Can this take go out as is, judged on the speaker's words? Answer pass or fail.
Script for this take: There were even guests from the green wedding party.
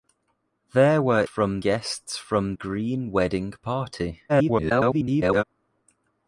fail